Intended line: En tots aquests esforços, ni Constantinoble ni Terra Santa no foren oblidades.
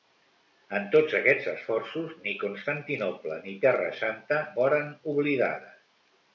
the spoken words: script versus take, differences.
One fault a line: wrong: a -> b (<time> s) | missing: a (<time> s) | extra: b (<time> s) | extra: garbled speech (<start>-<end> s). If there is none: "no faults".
missing: no (4.4 s)